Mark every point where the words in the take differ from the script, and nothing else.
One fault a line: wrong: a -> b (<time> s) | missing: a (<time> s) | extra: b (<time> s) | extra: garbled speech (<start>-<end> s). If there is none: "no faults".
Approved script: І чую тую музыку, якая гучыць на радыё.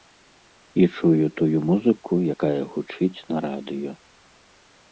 no faults